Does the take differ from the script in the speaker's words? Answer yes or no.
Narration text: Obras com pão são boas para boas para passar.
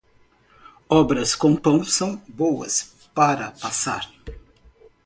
yes